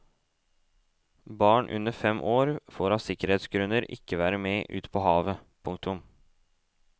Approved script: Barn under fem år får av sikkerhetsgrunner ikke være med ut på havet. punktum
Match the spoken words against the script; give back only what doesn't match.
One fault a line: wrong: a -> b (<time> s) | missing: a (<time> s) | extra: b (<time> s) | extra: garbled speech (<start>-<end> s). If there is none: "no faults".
no faults